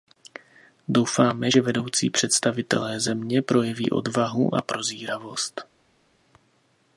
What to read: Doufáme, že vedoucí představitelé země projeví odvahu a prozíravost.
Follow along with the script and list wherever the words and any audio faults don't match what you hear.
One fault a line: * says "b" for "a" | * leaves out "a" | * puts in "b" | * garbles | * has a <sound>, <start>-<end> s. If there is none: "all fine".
all fine